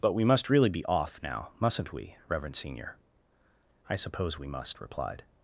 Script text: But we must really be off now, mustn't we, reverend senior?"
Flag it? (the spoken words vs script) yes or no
yes